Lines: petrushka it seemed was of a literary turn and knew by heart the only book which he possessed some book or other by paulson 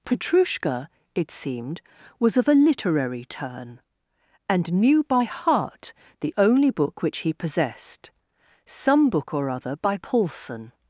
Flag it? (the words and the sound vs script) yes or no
no